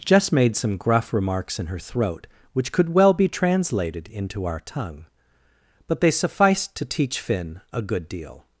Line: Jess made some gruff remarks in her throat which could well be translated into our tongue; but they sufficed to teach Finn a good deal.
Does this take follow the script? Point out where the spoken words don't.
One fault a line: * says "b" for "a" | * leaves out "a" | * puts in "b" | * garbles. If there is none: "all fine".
all fine